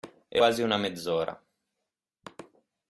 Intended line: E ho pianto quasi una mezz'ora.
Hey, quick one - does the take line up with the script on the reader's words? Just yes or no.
no